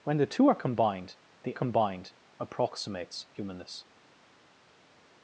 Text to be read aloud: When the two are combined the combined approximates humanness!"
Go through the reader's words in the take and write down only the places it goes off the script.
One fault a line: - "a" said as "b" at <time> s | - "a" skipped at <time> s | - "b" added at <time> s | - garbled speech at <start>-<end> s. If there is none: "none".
none